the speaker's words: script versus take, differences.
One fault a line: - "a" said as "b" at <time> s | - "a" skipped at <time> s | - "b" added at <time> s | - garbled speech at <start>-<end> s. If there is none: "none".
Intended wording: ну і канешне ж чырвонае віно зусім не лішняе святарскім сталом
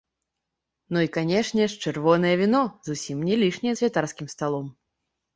none